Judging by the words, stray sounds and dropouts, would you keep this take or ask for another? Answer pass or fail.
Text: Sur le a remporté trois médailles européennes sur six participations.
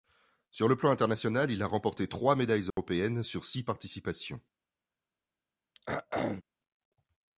fail